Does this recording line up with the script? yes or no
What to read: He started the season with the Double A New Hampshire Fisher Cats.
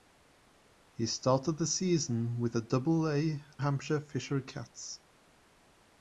no